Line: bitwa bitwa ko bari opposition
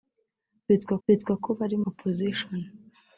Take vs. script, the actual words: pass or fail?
pass